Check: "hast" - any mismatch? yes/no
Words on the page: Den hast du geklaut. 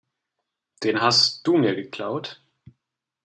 no